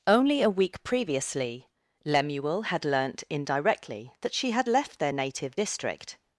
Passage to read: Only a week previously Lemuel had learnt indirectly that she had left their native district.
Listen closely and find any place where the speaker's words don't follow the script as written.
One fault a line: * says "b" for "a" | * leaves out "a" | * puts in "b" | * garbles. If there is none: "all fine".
all fine